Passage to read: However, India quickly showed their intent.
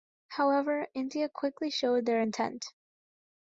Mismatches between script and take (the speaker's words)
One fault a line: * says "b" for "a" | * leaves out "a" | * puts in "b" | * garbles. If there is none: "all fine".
all fine